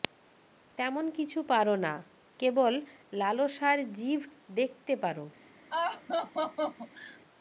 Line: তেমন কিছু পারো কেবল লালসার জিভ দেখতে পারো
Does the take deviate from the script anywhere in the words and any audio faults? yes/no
yes